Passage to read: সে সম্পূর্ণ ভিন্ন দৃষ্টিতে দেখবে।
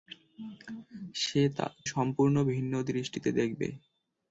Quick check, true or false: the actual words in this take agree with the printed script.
true